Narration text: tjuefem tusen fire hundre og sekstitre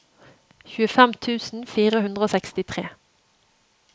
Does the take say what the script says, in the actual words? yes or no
yes